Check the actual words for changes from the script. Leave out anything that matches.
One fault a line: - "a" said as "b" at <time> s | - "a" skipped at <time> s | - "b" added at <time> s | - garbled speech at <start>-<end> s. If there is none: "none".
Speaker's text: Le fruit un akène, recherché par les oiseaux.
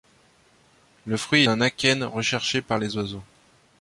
none